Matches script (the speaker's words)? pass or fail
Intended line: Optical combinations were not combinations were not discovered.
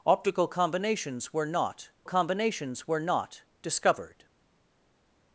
pass